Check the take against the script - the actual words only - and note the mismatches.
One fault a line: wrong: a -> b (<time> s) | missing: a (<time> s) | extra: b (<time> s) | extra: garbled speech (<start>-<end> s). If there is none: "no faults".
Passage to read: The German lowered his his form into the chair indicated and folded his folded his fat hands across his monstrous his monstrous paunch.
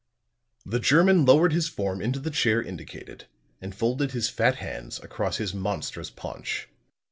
missing: his (1.7 s)
missing: folded his (4.3 s)
missing: his monstrous (6.1 s)